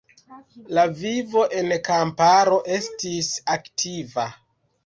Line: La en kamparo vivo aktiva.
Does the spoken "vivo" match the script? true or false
false